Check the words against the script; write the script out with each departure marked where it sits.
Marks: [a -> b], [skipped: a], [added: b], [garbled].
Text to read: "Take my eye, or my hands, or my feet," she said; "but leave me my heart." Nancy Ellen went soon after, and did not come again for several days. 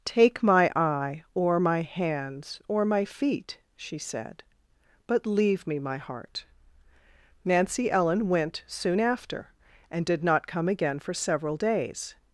"Take my eye, or my hands, or my feet," she said; "but leave me my heart." Nancy Ellen went soon after, and did not come again for several days.